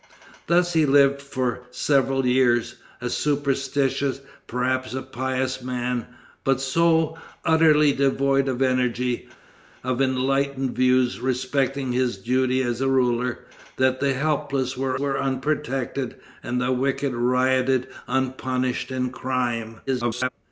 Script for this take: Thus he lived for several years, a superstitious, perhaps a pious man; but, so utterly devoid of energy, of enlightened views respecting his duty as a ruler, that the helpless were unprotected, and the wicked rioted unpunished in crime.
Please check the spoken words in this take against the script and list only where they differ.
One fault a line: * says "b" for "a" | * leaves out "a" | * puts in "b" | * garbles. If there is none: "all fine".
* puts in "were"
* garbles